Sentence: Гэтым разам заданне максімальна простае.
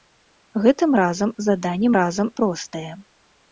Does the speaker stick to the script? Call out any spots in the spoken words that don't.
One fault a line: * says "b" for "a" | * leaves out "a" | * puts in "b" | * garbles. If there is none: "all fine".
* says "разам" for "максімальна"